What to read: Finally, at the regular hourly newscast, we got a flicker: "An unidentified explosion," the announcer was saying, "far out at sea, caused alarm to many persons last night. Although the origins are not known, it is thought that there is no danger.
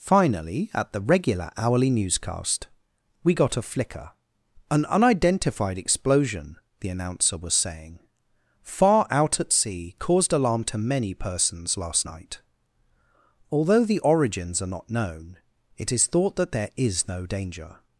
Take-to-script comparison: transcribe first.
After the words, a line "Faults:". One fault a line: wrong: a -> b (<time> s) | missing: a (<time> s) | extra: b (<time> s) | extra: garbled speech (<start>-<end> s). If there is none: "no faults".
Finally, at the regular hourly newscast, we got a flicker: "An unidentified explosion," the announcer was saying, "far out at sea, caused alarm to many persons last night. Although the origins are not known, it is thought that there is no danger.
Faults:
no faults